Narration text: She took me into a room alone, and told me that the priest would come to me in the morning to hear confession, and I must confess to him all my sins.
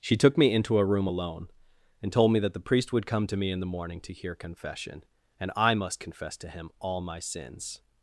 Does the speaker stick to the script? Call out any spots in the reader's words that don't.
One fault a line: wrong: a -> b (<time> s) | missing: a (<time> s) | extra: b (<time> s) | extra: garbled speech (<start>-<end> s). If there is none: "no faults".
no faults